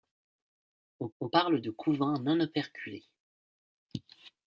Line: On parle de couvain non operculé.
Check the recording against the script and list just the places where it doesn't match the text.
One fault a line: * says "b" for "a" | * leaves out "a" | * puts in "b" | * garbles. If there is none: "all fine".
* puts in "on"